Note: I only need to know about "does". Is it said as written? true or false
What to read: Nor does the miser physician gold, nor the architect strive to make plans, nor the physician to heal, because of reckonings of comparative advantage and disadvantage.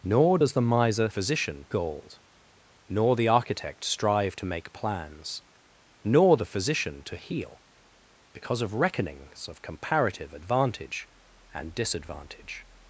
true